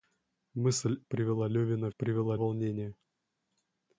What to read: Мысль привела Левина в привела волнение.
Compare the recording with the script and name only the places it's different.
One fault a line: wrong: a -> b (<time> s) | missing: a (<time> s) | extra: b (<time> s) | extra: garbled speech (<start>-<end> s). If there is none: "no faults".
no faults